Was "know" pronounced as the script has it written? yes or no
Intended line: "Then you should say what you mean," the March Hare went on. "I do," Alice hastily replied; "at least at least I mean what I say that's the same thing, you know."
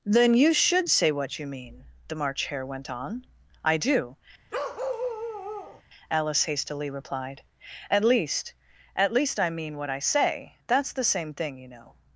yes